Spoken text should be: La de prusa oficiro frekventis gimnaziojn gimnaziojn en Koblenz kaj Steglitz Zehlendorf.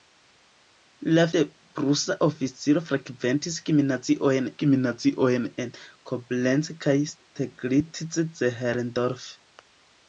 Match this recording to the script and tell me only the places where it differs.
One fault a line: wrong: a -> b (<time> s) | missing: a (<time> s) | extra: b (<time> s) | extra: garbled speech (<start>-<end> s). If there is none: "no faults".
no faults